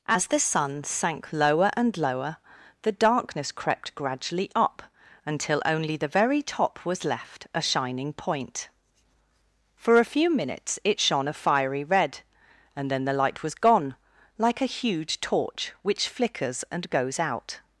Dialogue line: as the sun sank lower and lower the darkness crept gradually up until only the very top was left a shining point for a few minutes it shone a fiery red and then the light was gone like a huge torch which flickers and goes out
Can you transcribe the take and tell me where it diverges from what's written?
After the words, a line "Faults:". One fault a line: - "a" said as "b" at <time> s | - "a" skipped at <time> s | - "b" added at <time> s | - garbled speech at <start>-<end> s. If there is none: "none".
as the sun sank lower and lower the darkness crept gradually up until only the very top was left a shining point for a few minutes it shone a fiery red and then the light was gone like a huge torch which flickers and goes out
Faults:
none